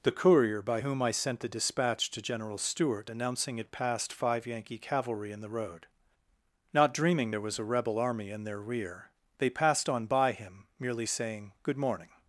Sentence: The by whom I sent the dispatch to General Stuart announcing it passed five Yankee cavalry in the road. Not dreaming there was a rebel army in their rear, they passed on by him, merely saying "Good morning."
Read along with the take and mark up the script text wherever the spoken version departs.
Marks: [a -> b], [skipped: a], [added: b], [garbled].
The [added: courier] by whom I sent the dispatch to General Stuart announcing it passed five Yankee cavalry in the road. Not dreaming there was a rebel army in their rear, they passed on by him, merely saying "Good morning."